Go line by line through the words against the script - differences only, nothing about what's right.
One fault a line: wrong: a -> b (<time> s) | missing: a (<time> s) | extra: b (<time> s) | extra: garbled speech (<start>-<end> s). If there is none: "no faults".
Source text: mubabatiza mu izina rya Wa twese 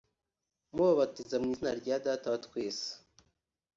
extra: Data (2.1 s)